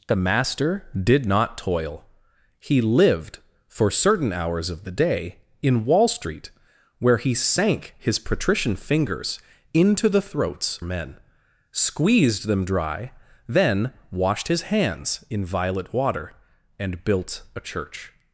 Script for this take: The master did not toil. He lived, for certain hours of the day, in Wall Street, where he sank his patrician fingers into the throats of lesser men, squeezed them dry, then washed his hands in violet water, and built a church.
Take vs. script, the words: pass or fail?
fail